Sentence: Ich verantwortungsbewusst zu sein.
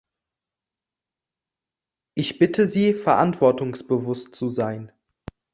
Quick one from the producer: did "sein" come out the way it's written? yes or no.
yes